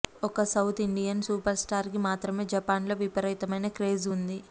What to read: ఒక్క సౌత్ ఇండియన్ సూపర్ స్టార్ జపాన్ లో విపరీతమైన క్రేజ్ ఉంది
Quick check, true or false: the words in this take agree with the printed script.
false